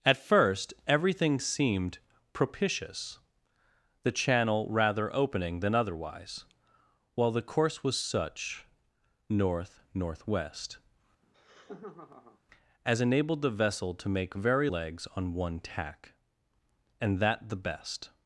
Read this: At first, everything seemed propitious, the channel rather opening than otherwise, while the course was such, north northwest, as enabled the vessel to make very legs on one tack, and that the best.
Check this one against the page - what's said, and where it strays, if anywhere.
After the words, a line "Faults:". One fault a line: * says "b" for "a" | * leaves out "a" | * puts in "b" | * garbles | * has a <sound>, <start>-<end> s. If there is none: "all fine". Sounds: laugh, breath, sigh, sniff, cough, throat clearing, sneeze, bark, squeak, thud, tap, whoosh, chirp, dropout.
At first, everything seemed propitious, the channel rather opening than otherwise, while the course was such, north northwest, as enabled the vessel to make very legs on one tack, and that the best.
Faults:
* has a laugh, 11.2-12.4 s